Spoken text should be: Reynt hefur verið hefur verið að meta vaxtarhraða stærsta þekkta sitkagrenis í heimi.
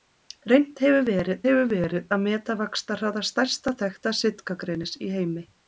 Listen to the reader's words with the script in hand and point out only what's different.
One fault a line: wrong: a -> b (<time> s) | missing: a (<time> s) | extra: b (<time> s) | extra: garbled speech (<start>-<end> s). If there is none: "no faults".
no faults